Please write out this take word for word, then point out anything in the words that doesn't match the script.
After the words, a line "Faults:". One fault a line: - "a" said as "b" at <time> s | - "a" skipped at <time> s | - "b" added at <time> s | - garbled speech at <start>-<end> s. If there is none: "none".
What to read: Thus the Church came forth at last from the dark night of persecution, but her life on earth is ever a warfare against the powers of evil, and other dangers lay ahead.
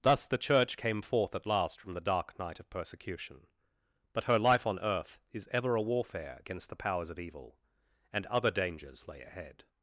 Thus the Church came forth at last from the dark night of persecution, but her life on earth is ever a warfare against the powers of evil, and other dangers lay ahead.
Faults:
none